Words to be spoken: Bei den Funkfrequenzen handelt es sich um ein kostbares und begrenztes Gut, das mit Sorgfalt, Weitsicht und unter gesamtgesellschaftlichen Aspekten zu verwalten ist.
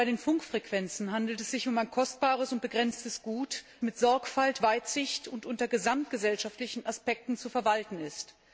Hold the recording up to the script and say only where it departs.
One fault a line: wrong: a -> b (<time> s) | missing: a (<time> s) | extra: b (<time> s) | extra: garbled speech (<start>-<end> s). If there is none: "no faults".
missing: das (3.6 s)